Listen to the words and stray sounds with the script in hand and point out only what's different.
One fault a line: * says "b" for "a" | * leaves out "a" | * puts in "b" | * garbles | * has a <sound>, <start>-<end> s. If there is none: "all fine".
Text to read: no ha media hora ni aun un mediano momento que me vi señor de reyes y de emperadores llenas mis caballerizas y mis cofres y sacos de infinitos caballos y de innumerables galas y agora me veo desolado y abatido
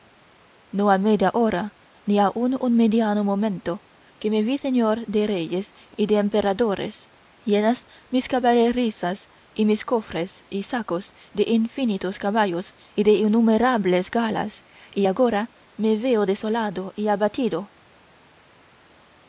all fine